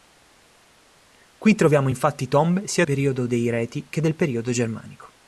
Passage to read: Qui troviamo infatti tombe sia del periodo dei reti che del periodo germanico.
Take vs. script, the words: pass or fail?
fail